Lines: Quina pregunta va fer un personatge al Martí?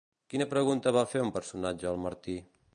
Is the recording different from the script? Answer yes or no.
no